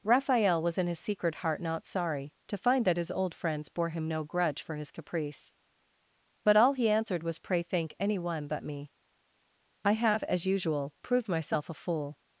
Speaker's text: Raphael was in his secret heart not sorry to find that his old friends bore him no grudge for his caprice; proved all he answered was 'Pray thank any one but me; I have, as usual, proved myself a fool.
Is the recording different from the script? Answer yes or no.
yes